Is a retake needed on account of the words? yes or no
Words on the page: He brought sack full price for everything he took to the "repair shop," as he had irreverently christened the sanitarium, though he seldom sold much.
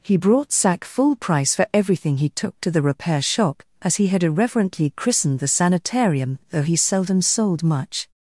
no